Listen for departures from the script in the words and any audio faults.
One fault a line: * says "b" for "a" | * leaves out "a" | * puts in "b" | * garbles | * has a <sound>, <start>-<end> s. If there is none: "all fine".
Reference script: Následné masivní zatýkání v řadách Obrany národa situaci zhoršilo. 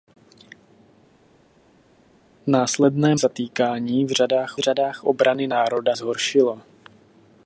* leaves out "masivní"
* puts in "řadách"
* leaves out "situaci"